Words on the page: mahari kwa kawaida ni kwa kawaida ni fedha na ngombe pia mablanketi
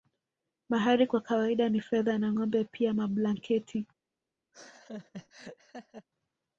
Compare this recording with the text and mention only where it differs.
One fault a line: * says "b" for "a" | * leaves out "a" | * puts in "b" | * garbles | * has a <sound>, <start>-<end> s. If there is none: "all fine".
* leaves out "kwa kawaida ni"
* has a laugh, 4.5-6.1 s